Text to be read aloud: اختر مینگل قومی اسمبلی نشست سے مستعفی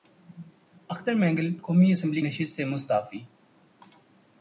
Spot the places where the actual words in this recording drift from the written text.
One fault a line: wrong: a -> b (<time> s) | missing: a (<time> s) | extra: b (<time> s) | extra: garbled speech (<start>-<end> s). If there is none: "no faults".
no faults